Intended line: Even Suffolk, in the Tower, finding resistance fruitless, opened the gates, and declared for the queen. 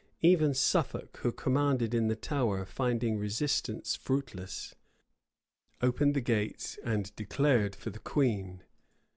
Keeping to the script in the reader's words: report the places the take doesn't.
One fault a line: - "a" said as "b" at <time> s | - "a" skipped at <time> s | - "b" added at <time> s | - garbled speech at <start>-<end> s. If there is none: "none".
- "who commanded" added at 1.2 s